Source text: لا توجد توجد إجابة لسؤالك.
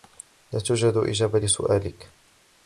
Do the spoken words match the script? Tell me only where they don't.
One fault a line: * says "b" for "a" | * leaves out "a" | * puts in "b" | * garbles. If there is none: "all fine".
* leaves out "توجد"